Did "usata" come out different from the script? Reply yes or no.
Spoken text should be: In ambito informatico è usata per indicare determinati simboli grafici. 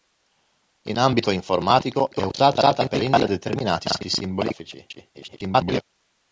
no